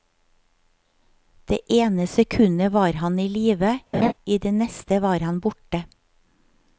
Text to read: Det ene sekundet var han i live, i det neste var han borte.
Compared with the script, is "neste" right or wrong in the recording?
right